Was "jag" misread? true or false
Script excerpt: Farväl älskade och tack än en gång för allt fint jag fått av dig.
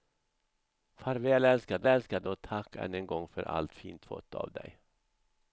true